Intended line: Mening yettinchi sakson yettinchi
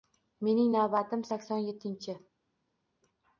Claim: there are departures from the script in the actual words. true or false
true